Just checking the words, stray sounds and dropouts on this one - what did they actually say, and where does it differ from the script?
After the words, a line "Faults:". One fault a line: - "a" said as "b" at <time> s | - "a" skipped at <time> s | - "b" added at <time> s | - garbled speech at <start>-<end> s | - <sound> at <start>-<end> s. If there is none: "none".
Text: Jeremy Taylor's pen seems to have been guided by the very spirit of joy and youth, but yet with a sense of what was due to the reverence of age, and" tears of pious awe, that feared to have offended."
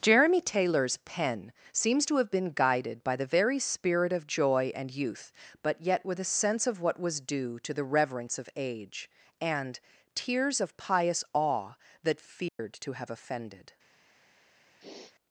Jeremy Taylor's pen seems to have been guided by the very spirit of joy and youth, but yet with a sense of what was due to the reverence of age, and" tears of pious awe, that feared to have offended."
Faults:
- dropout at 12.5-12.6 s
- sniff at 14.8-15.1 s